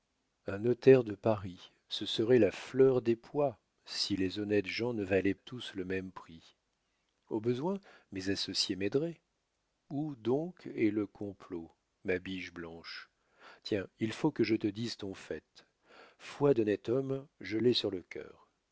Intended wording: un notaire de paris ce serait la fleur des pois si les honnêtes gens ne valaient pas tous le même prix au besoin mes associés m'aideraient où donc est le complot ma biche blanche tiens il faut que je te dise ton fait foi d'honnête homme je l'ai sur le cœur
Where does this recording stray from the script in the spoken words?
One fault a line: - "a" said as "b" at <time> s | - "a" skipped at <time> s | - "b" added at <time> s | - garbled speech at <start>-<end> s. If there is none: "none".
- "pas" skipped at 5.3 s